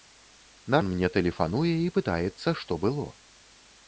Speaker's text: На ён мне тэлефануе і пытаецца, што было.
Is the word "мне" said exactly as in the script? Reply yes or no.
yes